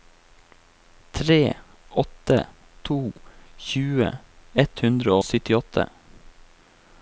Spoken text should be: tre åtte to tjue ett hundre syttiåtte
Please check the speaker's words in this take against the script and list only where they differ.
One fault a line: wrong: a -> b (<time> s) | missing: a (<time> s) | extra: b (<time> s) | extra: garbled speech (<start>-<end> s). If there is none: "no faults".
no faults